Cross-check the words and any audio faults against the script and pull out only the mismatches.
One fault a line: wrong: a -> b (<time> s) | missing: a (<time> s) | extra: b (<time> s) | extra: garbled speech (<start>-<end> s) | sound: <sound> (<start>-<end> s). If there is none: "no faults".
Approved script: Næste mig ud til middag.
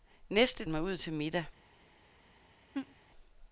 sound: laugh (2.7-3.0 s)